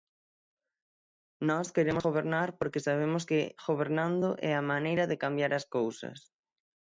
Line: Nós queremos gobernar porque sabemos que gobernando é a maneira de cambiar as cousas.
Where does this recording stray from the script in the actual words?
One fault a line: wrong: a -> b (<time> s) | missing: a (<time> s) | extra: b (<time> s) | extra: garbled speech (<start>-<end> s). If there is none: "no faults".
no faults